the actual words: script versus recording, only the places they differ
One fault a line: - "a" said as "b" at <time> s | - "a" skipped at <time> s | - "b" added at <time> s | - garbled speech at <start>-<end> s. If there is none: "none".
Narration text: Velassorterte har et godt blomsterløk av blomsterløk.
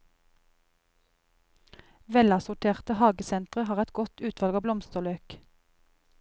- "hagesentre" added at 3.0 s
- "blomsterløk" said as "utvalg" at 4.3 s